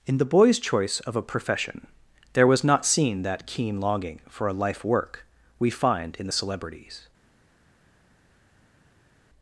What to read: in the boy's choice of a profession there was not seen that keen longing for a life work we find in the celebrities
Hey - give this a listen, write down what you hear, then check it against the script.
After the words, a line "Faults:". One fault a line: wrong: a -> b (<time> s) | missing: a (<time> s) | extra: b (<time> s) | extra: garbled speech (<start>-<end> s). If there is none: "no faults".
in the boy's choice of a profession there was not seen that keen longing for a life work we find in the celebrities
Faults:
no faults